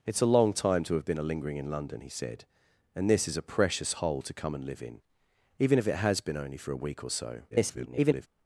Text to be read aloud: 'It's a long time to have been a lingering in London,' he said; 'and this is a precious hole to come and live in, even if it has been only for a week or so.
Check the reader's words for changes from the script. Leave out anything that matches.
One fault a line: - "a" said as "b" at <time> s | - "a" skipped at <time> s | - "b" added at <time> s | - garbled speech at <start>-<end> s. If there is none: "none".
- garbled speech at 7.5-8.3 s